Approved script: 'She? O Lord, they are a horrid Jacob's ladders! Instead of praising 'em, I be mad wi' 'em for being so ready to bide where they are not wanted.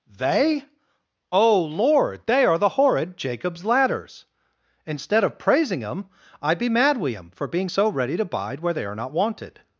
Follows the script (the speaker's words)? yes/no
no